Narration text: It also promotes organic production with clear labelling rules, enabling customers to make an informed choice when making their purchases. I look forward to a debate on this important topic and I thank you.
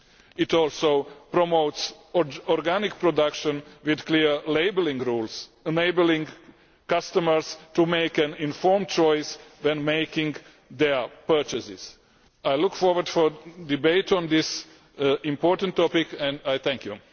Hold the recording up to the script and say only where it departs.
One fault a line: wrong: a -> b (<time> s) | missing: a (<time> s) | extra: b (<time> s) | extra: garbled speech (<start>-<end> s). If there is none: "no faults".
no faults